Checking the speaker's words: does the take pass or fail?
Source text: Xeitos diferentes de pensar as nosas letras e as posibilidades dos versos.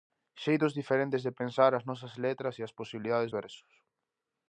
fail